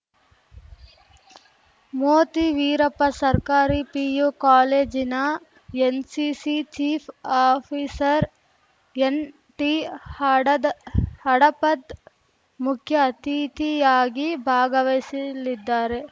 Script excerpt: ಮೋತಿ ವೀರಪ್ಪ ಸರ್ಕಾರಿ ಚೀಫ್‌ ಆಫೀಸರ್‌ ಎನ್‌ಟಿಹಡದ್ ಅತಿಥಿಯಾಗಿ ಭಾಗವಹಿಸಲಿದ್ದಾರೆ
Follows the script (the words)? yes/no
no